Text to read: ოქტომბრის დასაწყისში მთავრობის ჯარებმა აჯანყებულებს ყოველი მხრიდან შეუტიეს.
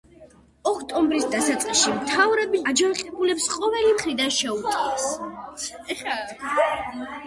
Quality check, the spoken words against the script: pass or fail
fail